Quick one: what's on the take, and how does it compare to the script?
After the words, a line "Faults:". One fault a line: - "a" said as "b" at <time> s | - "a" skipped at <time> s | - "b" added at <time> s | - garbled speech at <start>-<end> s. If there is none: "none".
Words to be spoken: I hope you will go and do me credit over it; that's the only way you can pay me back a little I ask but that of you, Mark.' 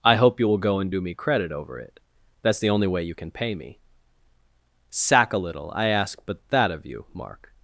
I hope you will go and do me credit over it; that's the only way you can pay me sack a little I ask but that of you, Mark.'
Faults:
- "back" said as "sack" at 4.9 s